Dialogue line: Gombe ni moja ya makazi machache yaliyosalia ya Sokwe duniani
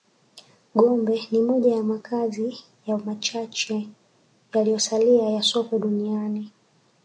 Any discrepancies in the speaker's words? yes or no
yes